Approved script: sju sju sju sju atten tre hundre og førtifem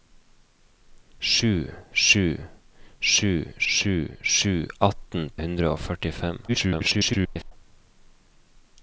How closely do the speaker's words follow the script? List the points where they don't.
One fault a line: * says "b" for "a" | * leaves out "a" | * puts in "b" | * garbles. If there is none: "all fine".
* puts in "sju"
* leaves out "tre"
* garbles